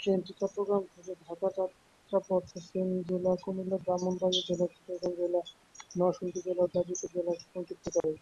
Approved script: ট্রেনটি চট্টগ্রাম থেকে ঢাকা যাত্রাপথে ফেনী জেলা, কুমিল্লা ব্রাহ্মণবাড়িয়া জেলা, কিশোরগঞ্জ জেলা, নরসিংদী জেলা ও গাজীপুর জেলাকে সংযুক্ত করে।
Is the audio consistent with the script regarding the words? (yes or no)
yes